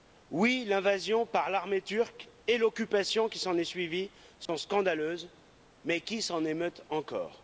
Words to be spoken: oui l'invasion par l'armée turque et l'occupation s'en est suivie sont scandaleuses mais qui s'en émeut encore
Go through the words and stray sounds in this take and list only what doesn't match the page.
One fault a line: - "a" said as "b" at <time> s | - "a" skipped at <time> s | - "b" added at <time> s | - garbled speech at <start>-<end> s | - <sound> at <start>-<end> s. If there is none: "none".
- "qui" added at 3.3 s
- dropout at 4.5-4.5 s